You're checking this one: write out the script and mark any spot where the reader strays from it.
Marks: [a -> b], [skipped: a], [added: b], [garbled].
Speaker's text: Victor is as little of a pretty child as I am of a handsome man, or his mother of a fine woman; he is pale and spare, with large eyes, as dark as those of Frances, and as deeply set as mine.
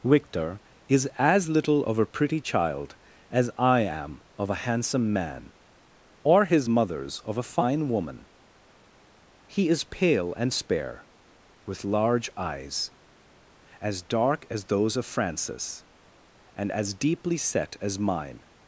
Victor is as little of a pretty child as I am of a handsome man, or his [mother -> mothers] of a fine woman; he is pale and spare, with large eyes, as dark as those of Frances, and as deeply set as mine.